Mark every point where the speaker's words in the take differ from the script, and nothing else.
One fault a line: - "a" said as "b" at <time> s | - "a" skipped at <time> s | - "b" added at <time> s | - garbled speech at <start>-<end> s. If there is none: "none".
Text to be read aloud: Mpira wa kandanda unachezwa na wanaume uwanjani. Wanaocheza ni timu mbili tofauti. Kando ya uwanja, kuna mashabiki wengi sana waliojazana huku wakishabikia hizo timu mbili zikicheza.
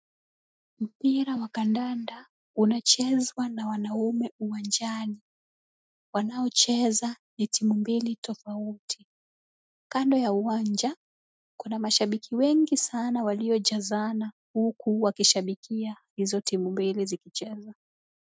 none